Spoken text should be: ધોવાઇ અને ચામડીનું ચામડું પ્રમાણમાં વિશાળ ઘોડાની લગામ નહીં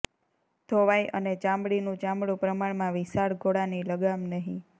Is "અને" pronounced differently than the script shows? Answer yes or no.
no